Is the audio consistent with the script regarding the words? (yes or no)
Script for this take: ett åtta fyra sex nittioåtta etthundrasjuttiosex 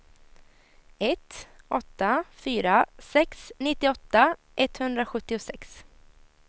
yes